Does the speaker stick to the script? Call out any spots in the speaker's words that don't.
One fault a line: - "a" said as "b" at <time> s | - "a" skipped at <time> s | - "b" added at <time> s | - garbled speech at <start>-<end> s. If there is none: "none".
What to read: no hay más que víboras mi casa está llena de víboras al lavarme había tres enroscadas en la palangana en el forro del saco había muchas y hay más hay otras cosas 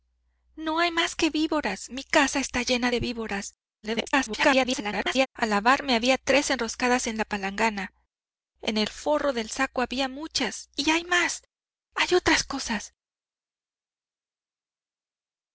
- garbled speech at 3.8-5.3 s